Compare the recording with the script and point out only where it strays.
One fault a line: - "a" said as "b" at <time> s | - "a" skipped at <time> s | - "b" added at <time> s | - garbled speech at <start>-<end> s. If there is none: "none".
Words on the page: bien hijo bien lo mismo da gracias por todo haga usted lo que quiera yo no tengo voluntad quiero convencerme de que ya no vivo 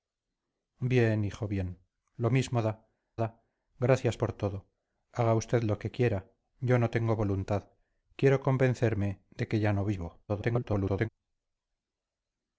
- "da" added at 3.2 s
- garbled speech at 10.3-11.1 s